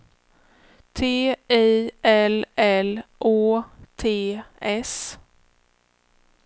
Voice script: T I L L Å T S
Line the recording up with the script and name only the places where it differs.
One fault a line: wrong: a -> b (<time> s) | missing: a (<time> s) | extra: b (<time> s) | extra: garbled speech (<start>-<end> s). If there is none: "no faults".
no faults